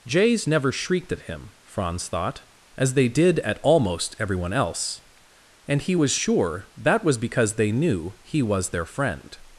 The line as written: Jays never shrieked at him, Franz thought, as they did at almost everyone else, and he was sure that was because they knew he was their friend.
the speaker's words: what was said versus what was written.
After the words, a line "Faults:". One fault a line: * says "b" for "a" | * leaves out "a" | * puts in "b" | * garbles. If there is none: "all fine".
Jays never shrieked at him, Franz thought, as they did at almost everyone else, and he was sure that was because they knew he was their friend.
Faults:
all fine